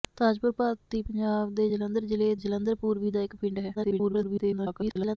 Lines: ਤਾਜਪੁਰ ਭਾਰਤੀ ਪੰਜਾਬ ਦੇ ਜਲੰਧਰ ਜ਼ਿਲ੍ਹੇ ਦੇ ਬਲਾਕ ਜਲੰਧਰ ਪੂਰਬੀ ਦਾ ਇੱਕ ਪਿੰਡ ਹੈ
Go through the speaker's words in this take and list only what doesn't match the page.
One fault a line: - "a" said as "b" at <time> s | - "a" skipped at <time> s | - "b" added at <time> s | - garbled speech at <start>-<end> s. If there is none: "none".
- "ਦੇ ਬਲਾਕ" skipped at 2.3 s
- garbled speech at 3.7-5.2 s